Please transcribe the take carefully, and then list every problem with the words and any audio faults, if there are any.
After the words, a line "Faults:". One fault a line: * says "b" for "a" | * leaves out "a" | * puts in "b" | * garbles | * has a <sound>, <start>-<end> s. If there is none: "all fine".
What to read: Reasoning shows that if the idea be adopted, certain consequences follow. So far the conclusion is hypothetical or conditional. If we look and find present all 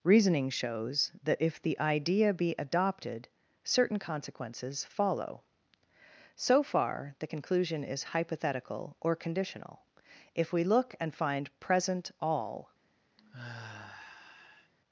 Reasoning shows that if the idea be adopted, certain consequences follow. So far the conclusion is hypothetical or conditional. If we look and find present all
Faults:
* has a sigh, 13.2-14.7 s